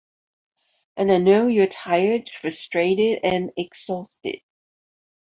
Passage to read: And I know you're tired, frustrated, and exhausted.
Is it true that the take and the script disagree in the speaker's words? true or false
false